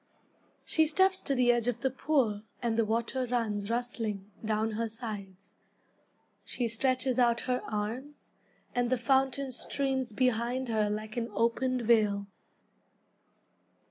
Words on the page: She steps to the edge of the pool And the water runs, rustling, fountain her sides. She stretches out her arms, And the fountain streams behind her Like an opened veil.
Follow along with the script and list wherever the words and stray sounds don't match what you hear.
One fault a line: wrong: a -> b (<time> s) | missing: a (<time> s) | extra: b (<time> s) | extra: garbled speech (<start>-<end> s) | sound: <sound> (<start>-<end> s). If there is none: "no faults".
wrong: fountain -> down (4.4 s)